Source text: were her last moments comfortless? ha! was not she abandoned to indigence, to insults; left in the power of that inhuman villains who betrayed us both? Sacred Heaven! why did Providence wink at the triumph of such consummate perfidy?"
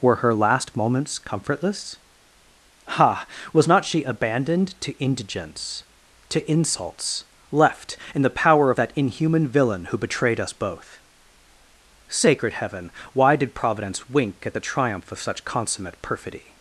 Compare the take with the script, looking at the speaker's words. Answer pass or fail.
fail